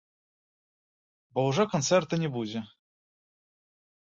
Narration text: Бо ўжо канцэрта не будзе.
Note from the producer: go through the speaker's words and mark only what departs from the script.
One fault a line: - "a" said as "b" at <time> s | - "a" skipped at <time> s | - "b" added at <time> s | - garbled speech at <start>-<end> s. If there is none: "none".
none